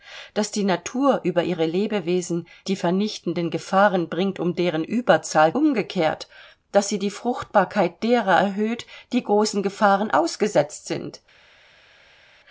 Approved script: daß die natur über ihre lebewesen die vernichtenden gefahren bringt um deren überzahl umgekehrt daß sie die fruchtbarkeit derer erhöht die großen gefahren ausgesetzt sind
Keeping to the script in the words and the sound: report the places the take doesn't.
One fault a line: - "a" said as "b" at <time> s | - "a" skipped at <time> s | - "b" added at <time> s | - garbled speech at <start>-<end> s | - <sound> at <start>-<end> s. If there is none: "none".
none